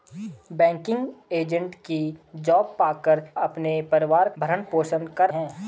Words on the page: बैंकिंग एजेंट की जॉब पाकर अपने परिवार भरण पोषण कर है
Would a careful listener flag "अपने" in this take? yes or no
no